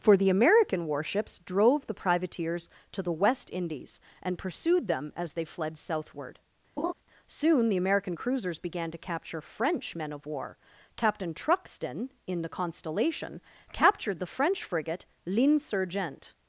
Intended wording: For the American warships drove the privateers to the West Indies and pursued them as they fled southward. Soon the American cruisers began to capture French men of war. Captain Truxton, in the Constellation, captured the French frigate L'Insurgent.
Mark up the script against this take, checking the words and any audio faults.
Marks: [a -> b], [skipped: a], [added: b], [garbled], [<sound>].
For the American warships drove the privateers to the West Indies and pursued them as they fled southward. [laugh] Soon the American cruisers began to capture French men of war. Captain Truxton, in the Constellation, captured the French frigate L'Insurgent.